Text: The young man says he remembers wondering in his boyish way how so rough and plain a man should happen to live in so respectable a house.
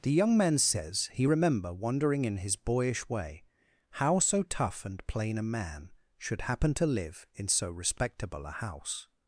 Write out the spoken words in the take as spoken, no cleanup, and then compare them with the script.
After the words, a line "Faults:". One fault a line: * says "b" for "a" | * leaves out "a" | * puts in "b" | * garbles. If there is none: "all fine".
The young man says he remember wondering in his boyish way how so tough and plain a man should happen to live in so respectable a house.
Faults:
* says "remember" for "remembers"
* says "tough" for "rough"